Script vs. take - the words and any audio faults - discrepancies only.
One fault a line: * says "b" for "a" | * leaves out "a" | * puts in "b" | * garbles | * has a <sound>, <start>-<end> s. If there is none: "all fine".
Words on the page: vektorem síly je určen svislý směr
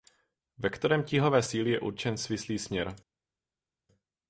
* puts in "tíhové"